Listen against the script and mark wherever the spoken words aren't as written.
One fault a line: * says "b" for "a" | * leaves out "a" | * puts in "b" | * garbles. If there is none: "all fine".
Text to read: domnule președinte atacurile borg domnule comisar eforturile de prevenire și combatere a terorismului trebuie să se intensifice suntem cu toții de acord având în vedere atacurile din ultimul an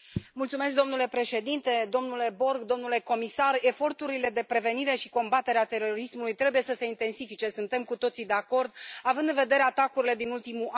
* says "domnule" for "atacurile"